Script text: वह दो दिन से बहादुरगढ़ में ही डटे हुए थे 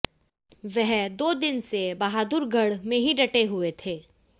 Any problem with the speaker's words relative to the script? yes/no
no